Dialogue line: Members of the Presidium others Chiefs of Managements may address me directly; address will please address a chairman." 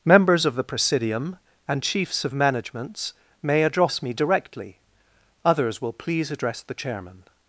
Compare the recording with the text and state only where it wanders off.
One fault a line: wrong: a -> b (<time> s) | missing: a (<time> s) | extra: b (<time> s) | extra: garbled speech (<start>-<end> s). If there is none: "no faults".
wrong: others -> and (1.7 s)
wrong: address -> others (5.4 s)
wrong: a -> the (6.6 s)